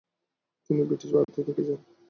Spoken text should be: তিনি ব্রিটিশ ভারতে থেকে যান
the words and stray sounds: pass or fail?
fail